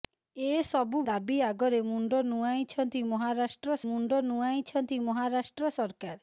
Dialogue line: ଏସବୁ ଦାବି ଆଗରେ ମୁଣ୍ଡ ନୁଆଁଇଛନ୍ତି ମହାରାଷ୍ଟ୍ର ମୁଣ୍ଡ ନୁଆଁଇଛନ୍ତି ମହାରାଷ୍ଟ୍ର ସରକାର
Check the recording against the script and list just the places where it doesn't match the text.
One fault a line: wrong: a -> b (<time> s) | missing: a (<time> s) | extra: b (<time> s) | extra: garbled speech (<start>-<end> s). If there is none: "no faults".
no faults